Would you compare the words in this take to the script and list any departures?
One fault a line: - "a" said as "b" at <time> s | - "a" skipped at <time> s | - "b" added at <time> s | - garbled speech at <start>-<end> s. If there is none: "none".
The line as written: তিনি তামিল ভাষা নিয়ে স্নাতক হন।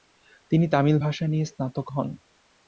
none